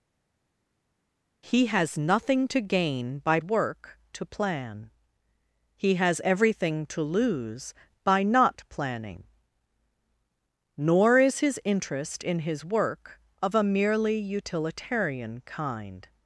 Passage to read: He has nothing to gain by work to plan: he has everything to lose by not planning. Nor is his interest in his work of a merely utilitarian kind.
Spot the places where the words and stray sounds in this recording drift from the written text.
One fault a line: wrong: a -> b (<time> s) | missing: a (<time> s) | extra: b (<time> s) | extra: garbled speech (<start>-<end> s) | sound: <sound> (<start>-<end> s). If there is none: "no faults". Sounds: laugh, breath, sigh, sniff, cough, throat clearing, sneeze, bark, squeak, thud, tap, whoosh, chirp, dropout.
no faults